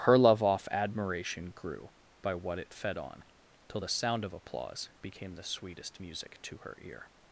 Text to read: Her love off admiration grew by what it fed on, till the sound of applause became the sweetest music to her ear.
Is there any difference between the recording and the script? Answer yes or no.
no